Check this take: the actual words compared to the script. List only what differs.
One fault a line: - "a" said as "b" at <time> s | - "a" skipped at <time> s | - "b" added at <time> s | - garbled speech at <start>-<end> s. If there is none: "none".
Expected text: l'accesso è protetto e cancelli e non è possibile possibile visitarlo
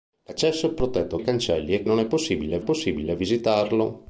none